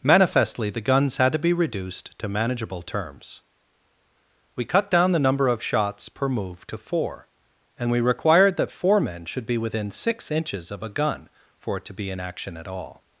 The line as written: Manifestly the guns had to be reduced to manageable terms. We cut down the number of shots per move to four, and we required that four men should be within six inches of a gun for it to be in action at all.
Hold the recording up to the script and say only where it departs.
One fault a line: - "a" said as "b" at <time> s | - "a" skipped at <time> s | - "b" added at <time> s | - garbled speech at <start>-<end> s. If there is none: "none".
none